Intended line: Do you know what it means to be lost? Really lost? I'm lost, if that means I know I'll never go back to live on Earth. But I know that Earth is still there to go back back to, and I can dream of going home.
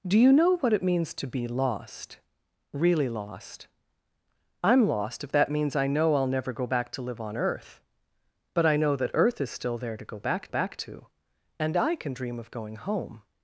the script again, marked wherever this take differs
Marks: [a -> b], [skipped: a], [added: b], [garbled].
Do you know what it means to be lost? Really lost? I'm lost, if that means I know I'll never go back to live on Earth. But I know that Earth is still there to go back back to, and I can dream of going home.